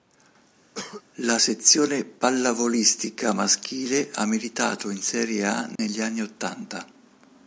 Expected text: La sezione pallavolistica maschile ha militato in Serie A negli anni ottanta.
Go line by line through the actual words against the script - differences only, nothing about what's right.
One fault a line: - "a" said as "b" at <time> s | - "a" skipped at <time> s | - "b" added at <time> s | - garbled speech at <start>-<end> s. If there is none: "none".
none